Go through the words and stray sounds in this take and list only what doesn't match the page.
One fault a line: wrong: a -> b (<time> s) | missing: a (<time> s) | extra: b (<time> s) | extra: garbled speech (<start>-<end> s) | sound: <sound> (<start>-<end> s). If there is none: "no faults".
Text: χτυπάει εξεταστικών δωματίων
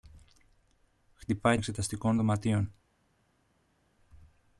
no faults